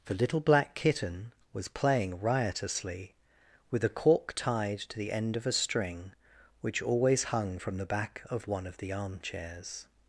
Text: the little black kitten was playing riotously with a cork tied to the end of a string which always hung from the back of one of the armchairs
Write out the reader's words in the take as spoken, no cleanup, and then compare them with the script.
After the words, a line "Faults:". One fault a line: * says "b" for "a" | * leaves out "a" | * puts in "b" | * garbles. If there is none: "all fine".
the little black kitten was playing riotously with a cork tied to the end of a string which always hung from the back of one of the armchairs
Faults:
all fine